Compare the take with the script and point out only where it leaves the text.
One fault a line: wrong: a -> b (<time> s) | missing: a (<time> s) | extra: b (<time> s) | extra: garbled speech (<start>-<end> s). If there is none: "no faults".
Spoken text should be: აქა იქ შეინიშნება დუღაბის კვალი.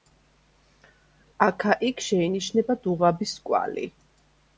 no faults